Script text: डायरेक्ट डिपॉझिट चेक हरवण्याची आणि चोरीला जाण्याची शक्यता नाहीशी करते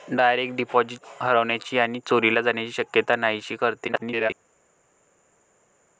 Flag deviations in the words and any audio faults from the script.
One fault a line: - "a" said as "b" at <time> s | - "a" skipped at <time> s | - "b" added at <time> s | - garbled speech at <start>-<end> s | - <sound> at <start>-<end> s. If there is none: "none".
- "चेक" skipped at 1.0 s
- garbled speech at 3.9-4.3 s